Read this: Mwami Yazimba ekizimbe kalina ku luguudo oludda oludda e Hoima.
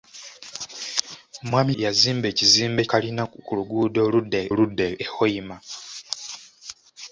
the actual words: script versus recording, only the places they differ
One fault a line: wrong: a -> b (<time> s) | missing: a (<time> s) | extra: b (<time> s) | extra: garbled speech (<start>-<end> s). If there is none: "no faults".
no faults